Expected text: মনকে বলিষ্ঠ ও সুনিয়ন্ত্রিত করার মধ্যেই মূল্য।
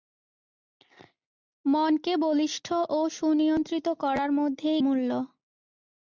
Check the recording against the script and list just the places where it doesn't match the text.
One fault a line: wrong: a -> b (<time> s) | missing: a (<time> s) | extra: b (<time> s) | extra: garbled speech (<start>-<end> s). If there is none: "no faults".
no faults